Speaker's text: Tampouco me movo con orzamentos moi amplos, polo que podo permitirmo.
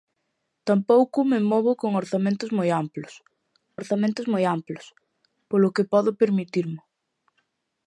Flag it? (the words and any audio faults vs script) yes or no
yes